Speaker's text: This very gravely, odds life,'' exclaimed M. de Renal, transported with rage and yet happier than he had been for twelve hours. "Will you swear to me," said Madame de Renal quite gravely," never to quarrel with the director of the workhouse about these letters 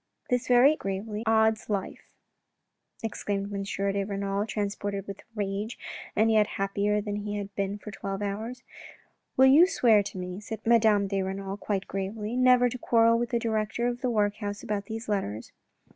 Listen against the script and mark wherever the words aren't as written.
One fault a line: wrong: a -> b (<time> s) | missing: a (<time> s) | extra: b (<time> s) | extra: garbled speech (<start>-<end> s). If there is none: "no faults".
no faults